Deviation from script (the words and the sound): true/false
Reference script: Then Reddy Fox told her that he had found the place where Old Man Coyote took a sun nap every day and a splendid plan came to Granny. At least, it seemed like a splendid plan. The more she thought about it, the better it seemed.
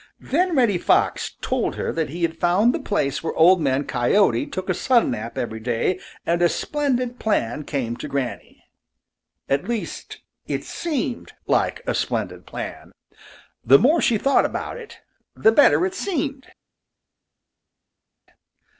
false